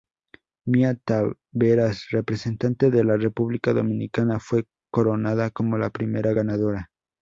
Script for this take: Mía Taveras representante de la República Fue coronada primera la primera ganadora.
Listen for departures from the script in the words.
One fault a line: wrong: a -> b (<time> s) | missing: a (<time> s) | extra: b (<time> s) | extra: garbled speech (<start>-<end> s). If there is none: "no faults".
extra: Dominicana (3.7 s)
wrong: primera -> como (5.5 s)